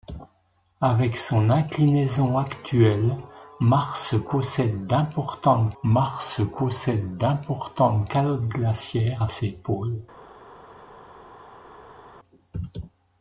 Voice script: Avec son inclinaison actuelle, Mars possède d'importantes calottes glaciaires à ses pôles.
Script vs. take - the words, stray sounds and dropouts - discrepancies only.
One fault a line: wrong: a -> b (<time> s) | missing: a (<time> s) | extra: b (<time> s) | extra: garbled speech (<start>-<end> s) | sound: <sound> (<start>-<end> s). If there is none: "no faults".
extra: Mars possède d'importantes (5.8 s)